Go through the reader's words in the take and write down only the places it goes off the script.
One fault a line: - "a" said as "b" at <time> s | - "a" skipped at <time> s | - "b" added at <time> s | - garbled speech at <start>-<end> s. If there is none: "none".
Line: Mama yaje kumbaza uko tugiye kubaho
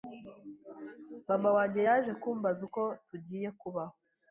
- "wanjye" added at 1.5 s